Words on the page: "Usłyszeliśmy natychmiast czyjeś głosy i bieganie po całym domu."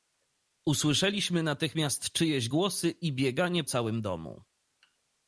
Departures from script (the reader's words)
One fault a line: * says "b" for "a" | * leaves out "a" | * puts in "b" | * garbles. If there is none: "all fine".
* leaves out "po"